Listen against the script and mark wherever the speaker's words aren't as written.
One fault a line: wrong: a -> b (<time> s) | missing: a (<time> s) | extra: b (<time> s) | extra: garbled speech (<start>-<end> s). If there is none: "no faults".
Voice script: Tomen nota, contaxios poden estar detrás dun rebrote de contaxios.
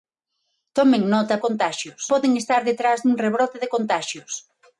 no faults